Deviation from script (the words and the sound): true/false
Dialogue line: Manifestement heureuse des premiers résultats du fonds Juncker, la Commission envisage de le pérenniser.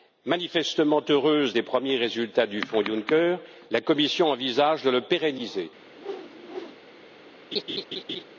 true